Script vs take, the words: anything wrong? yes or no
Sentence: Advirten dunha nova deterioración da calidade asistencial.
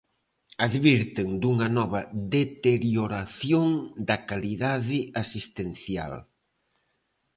no